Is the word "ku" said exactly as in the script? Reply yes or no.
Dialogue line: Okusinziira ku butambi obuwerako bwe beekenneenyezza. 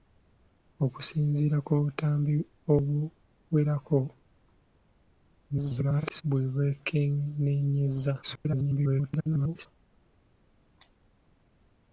yes